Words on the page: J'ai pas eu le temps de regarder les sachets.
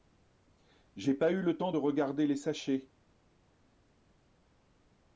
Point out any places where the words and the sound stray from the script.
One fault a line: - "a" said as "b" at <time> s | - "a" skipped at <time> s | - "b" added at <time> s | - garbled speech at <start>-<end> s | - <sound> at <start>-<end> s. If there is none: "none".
none